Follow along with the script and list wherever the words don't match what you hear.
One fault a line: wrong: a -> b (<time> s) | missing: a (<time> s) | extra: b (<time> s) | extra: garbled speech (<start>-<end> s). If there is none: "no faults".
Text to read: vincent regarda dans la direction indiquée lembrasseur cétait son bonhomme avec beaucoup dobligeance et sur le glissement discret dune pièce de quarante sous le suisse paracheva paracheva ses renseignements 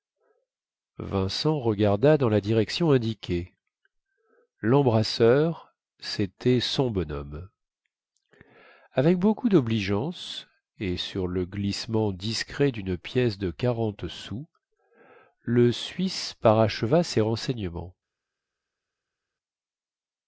missing: paracheva (17.0 s)